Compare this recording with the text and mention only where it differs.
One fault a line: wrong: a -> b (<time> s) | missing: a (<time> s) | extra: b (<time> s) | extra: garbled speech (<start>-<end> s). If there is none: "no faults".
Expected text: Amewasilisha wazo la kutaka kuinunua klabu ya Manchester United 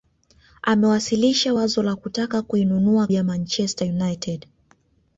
missing: klabu (3.1 s)